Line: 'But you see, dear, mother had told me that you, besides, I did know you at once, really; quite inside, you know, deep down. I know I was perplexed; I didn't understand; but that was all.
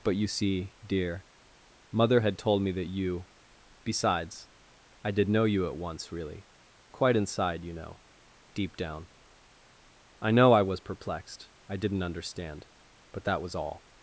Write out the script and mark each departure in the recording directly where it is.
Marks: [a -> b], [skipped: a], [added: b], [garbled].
'But you see, dear, mother had told me that you, besides, I did know you at once, really; quite inside, you know, deep down. I know I was perplexed; I didn't understand; but that was all.